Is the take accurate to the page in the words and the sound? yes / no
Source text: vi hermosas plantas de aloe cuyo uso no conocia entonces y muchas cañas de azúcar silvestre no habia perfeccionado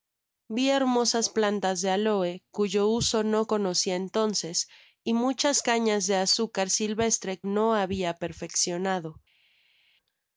yes